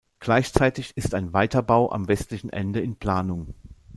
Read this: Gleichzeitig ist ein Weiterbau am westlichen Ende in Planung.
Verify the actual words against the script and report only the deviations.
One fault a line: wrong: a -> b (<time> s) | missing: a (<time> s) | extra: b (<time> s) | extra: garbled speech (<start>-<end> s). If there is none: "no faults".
no faults